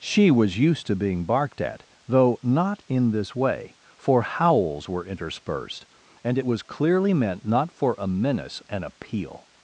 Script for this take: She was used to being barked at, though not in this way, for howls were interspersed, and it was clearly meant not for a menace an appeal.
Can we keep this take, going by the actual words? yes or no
yes